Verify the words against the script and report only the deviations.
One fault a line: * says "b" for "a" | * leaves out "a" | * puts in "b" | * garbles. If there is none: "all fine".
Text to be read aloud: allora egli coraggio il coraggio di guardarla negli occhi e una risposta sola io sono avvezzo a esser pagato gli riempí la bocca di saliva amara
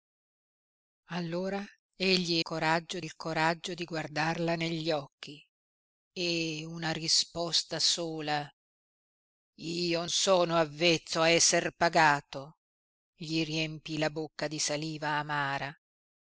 all fine